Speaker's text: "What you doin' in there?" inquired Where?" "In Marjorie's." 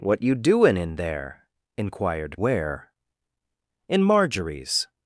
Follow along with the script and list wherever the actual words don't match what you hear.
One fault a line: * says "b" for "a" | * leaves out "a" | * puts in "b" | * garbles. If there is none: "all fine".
all fine